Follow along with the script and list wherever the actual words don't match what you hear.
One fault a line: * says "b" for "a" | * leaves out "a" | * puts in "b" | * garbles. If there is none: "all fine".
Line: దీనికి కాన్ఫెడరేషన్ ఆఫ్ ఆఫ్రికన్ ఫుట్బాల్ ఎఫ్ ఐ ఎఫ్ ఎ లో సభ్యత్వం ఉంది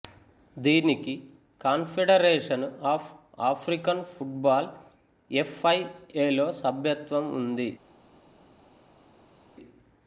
* leaves out "ఎఫ్"